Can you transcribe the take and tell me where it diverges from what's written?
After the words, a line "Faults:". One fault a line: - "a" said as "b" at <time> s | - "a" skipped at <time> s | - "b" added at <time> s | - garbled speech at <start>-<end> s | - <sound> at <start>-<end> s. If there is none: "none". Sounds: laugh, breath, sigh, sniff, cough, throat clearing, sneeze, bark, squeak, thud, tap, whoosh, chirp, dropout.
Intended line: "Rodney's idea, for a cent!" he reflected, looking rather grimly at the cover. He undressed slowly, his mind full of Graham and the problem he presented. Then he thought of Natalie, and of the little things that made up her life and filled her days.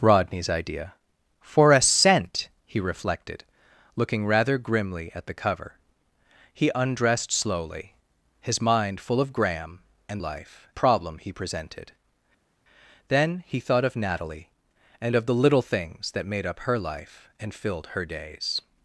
"Rodney's idea, for a cent!" he reflected, looking rather grimly at the cover. He undressed slowly, his mind full of Graham and life problem he presented. Then he thought of Natalie, and of the little things that made up her life and filled her days.
Faults:
- "the" said as "life" at 10.2 s